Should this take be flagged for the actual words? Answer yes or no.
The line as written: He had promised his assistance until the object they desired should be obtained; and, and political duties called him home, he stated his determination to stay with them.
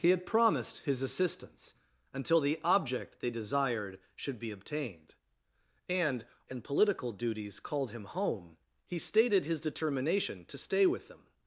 no